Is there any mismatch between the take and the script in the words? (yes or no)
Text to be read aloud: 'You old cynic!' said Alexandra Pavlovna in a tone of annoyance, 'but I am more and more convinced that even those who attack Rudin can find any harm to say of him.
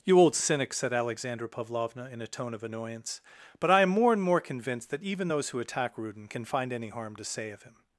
no